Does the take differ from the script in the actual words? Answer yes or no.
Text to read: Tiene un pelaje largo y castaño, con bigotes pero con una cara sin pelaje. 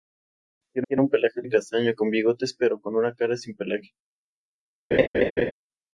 yes